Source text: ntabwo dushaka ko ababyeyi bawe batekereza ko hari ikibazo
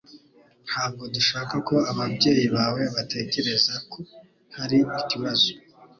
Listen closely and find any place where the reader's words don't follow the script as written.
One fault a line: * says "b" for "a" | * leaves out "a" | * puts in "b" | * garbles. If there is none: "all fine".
all fine